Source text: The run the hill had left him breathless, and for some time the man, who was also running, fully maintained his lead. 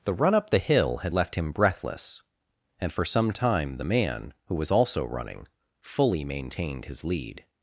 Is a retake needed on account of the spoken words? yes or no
yes